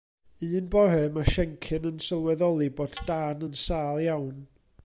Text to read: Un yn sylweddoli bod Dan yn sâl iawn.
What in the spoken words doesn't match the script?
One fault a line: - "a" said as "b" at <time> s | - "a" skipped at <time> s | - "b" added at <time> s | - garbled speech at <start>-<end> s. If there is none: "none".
- "bore mae Siencyn" added at 0.8 s